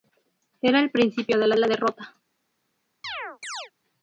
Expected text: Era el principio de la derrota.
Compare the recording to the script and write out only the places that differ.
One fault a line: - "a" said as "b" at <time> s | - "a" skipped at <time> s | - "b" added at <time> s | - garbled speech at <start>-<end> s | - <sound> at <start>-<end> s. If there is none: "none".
- "la" added at 1.6 s
- chirp at 3.0-3.7 s